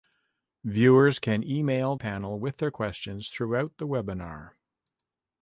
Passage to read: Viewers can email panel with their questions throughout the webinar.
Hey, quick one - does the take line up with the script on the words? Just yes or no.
yes